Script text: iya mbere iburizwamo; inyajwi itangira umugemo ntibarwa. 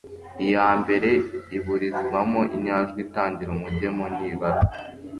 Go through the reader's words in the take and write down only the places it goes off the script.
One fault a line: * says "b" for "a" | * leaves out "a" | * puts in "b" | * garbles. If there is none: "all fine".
all fine